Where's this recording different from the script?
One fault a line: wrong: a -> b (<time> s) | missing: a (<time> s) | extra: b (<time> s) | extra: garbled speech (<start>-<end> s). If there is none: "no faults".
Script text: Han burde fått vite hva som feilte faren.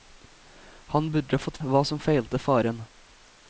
missing: vite (1.6 s)